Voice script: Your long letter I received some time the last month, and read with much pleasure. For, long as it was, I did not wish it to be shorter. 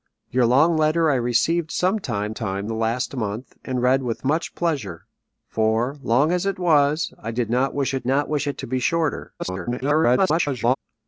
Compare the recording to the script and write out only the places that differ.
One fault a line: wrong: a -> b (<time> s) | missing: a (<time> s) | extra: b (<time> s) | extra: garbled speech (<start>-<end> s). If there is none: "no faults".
extra: time (2.3 s)
extra: not wish it (8.1 s)
extra: garbled speech (9.4-10.8 s)